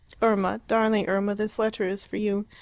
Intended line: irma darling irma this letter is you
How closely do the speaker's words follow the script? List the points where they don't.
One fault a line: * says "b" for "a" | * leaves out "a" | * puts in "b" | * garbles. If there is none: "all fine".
* puts in "for"